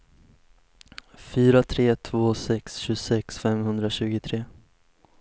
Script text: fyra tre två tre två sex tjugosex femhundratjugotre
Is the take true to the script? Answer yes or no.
no